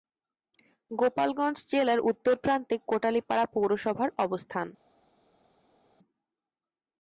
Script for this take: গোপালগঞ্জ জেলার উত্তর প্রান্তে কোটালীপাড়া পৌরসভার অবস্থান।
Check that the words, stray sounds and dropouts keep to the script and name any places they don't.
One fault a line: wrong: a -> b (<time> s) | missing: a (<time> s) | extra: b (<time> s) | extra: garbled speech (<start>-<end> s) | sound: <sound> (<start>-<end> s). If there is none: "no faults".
no faults